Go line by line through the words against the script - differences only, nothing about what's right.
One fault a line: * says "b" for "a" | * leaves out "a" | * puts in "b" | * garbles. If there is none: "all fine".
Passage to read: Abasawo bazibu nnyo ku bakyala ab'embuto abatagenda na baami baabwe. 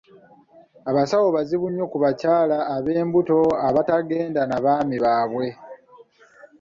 all fine